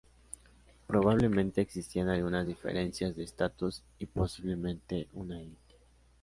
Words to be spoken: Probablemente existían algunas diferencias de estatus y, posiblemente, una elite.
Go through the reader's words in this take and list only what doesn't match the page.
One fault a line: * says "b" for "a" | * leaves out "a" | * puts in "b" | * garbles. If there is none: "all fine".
all fine